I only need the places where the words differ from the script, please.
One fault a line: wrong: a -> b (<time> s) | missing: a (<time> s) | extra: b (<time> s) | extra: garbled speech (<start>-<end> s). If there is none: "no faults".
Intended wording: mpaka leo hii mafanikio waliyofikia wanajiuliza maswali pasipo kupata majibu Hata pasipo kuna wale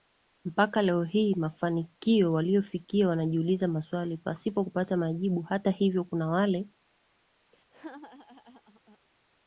wrong: pasipo -> hivyo (5.7 s)